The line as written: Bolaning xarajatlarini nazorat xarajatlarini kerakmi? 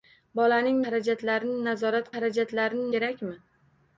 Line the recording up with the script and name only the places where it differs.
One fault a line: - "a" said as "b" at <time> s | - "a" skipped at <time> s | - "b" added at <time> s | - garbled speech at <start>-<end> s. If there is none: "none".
none